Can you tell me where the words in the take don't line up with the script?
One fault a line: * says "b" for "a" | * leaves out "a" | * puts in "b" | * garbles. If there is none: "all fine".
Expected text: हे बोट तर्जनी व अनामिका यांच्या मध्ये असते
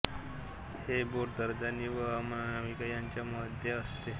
all fine